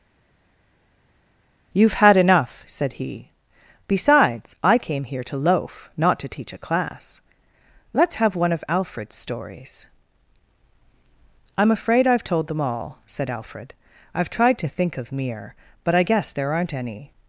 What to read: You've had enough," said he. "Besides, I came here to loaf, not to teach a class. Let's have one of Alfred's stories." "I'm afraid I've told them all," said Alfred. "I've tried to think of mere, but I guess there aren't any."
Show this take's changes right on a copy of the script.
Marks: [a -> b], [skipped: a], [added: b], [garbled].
You've had enough," said he. "Besides, I came here to loaf, not to teach a class. Let's have one of Alfred's stories." "I'm afraid I've told them all," said Alfred. "I've tried to think of mere, but I guess there aren't any."